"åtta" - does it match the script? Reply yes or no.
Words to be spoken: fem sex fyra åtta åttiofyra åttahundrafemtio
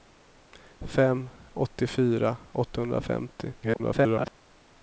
no